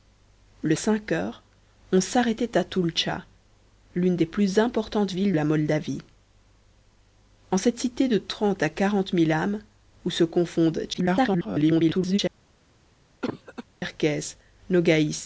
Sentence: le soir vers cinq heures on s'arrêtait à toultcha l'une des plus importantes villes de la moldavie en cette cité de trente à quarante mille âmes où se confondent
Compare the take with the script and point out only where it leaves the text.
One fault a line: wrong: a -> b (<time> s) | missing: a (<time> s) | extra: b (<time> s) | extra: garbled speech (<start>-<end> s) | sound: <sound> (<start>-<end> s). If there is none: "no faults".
missing: soir vers (0.8 s)
missing: de (5.3 s)
extra: garbled speech (10.9-12.2 s)
sound: cough (13.2-13.6 s)